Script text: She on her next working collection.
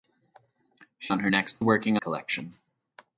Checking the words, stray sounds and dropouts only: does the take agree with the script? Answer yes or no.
yes